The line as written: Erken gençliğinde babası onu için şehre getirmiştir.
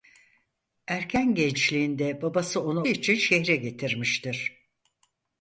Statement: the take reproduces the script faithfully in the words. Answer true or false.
true